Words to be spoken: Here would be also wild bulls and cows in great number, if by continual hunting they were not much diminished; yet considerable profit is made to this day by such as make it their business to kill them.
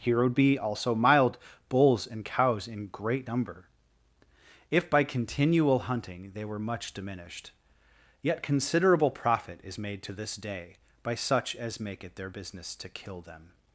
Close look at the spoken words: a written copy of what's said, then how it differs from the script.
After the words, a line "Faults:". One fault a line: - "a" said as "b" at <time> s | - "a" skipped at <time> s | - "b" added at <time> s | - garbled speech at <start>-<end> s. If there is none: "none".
Here would be also mild bulls and cows in great number, if by continual hunting they were much diminished; yet considerable profit is made to this day by such as make it their business to kill them.
Faults:
- "wild" said as "mild" at 0.9 s
- "not" skipped at 6.6 s